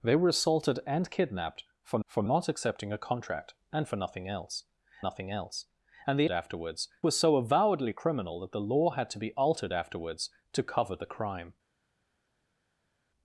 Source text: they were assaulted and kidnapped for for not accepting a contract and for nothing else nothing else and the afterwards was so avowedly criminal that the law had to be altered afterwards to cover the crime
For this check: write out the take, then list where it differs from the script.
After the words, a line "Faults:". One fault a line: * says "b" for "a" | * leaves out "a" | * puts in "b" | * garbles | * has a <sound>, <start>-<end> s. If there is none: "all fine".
they were assaulted and kidnapped for for not accepting a contract and for nothing else nothing else and the afterwards was so avowedly criminal that the law had to be altered afterwards to cover the crime
Faults:
all fine